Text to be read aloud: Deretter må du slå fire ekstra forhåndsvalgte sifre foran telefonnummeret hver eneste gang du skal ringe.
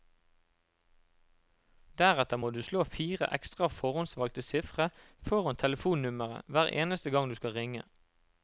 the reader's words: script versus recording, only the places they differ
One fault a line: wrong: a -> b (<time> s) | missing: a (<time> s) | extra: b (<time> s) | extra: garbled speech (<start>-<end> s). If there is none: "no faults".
no faults